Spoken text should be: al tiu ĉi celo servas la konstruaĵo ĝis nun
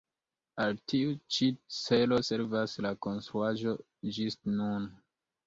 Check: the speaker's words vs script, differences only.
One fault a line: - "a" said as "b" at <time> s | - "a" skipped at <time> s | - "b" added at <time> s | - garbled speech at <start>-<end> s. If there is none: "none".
none